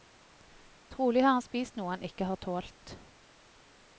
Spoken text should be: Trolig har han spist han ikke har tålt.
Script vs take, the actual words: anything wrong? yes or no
yes